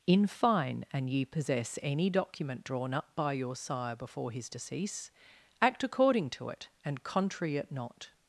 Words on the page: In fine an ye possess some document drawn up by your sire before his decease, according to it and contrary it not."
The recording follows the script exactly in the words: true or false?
false